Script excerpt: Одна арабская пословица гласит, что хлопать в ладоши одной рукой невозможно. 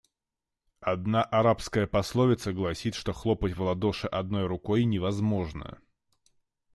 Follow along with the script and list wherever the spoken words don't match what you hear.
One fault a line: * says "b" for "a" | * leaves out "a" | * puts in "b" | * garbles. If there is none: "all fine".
all fine